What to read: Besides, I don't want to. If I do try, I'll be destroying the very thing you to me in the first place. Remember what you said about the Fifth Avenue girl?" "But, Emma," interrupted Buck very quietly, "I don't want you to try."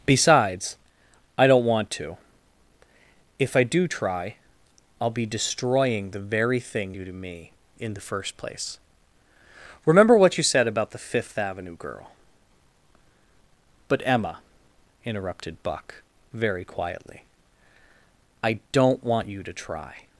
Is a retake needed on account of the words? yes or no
no